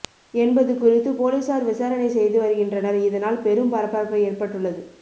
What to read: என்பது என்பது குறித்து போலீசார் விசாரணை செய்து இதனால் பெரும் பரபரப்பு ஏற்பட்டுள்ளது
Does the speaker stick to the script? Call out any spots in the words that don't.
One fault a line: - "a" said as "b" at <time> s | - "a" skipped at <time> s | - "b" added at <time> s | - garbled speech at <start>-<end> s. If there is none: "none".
- "என்பது" skipped at 0.7 s
- "வருகின்றனர்" added at 2.4 s